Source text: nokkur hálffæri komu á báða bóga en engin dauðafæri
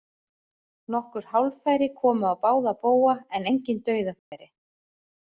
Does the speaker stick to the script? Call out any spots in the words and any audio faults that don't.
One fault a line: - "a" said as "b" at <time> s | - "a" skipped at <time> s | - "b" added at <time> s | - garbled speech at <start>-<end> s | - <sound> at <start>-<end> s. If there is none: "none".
- dropout at 4.2-4.3 s